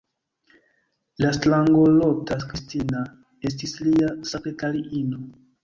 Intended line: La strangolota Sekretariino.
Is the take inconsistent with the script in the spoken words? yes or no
yes